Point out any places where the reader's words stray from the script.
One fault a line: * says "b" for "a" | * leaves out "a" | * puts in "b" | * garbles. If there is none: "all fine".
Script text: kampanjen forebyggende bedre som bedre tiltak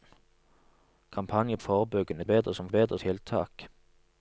all fine